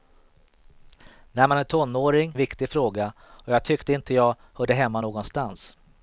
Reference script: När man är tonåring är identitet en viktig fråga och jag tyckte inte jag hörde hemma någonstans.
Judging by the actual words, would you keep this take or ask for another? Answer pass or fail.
fail